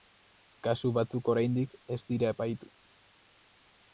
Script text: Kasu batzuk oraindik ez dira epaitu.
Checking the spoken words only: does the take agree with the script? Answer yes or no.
yes